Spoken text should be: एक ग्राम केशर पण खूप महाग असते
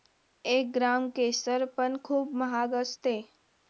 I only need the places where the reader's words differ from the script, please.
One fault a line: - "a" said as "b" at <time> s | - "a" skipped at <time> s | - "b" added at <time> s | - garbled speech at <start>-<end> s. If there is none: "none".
none